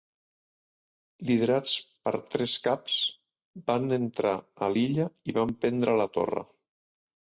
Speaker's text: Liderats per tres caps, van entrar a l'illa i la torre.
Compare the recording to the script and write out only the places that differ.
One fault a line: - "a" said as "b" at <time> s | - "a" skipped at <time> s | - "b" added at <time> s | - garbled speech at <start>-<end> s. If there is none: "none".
- "van prendre" added at 5.4 s